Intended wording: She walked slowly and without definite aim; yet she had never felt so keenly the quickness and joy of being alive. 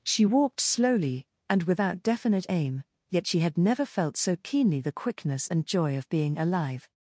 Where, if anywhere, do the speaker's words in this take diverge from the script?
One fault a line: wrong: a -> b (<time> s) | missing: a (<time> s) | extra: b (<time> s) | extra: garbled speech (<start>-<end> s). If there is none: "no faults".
no faults